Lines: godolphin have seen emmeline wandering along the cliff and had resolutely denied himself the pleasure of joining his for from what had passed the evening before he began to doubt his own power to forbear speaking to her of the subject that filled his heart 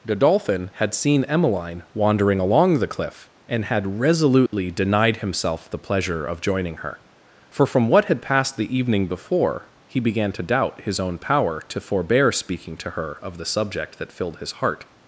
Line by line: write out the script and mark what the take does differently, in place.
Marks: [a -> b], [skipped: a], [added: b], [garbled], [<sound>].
godolphin [have -> had] seen emmeline wandering along the cliff and had resolutely [dropout] denied himself the pleasure of joining [his -> her] for from what had passed the evening before he began to doubt his own power to forbear speaking to her of the subject that filled his heart